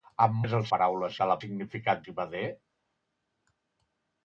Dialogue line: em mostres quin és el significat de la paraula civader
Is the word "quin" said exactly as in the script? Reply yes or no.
no